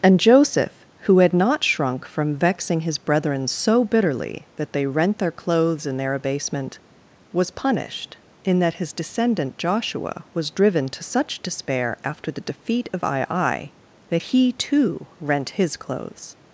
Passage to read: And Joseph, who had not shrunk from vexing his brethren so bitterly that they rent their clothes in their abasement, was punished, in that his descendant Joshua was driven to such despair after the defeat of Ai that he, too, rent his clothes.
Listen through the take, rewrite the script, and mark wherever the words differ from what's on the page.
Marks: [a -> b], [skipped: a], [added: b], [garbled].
And Joseph, who had not shrunk from vexing his brethren so bitterly that they rent their clothes in their abasement, was punished, in that his descendant Joshua was driven to such despair after the defeat of Ai that he, too, rent his clothes.